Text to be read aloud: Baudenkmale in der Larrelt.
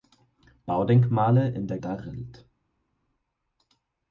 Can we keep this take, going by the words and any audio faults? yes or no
yes